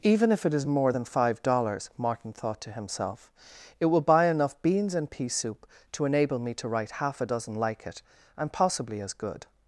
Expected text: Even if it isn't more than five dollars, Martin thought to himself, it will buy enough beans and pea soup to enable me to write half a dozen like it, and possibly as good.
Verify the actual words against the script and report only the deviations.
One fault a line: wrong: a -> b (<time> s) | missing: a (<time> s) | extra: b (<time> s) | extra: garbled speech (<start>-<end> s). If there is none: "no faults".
wrong: isn't -> is (0.5 s)